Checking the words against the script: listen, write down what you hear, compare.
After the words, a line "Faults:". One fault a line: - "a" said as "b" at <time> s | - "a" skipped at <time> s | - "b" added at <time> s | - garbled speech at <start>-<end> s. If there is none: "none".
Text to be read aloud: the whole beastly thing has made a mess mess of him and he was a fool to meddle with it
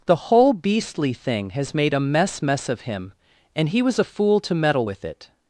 the whole beastly thing has made a mess mess of him and he was a fool to meddle with it
Faults:
none